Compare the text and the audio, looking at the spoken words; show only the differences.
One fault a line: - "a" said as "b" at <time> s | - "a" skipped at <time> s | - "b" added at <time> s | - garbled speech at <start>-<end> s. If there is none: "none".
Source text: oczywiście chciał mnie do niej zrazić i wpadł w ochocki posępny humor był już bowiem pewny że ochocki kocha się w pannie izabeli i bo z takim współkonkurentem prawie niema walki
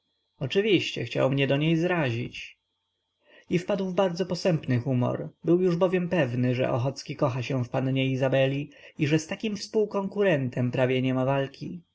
- "ochocki" said as "bardzo" at 3.9 s
- "bo" said as "że" at 9.1 s